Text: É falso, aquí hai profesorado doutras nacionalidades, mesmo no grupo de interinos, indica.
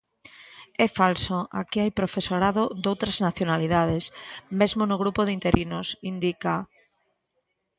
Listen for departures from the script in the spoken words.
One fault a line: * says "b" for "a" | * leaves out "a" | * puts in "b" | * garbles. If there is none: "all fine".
all fine